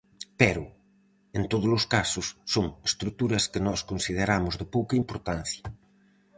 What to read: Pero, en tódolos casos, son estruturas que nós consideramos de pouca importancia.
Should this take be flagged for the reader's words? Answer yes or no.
no